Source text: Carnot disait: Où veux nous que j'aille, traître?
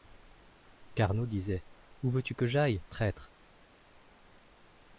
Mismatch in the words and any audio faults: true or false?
true